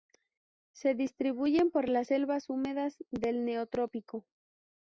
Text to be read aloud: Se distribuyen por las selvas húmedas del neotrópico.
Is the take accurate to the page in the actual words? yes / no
yes